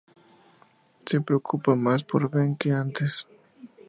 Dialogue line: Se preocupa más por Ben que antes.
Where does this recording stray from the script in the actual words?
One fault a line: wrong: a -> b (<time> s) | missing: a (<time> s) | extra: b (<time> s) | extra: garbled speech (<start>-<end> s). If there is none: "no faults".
no faults